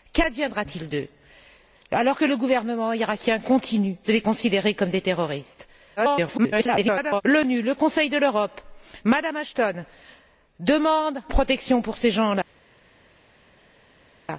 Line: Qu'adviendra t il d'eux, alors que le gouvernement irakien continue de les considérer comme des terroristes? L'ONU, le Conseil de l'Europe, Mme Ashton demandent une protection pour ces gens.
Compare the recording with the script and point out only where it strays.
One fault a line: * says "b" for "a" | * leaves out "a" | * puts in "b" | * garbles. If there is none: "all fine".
* garbles
* leaves out "une"